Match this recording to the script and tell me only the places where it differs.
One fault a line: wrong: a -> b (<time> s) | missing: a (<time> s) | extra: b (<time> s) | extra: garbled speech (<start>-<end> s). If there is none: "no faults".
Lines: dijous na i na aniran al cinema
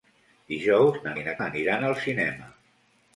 no faults